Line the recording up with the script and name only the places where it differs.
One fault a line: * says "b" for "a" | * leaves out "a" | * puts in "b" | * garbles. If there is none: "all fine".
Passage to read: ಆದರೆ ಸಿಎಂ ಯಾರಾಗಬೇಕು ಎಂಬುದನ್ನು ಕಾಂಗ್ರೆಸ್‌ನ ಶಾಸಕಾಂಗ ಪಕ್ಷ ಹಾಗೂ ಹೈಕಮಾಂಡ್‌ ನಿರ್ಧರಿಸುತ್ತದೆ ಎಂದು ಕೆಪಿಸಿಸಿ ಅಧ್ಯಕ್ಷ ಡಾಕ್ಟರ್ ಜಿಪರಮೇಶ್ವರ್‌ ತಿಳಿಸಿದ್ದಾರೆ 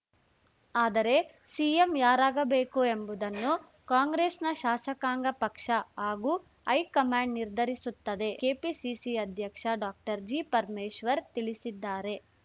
* leaves out "ಎಂದು"